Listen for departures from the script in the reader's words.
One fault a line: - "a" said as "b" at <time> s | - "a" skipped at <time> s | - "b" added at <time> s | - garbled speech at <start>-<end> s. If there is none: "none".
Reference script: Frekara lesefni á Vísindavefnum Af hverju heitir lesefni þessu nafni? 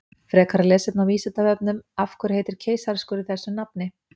- "lesefni" said as "keisaraskurður" at 2.7 s